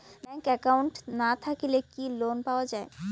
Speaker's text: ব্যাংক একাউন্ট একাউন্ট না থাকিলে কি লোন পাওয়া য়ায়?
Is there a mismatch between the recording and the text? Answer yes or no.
yes